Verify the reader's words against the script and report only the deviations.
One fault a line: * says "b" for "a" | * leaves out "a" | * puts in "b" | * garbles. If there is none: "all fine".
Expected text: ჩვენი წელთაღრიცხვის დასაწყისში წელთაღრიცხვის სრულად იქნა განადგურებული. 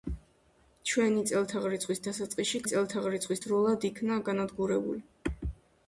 all fine